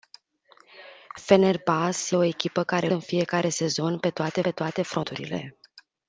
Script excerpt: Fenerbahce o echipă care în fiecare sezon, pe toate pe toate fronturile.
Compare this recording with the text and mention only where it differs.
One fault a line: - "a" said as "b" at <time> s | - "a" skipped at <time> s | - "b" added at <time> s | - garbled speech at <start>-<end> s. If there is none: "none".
none